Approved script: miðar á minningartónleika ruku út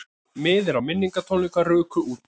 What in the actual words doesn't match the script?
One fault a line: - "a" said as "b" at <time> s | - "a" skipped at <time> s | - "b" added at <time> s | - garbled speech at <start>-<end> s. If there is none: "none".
none